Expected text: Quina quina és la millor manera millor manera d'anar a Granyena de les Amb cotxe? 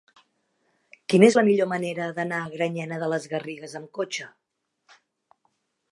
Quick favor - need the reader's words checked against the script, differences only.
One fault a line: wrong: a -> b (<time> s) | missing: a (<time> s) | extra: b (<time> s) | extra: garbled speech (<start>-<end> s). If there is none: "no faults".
missing: quina (1.3 s)
missing: millor manera (2.1 s)
extra: Garrigues (3.4 s)